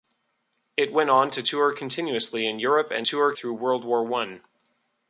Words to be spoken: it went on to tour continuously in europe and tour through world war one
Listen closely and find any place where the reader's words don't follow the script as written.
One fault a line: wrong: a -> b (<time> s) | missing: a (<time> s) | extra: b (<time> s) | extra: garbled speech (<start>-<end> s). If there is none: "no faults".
no faults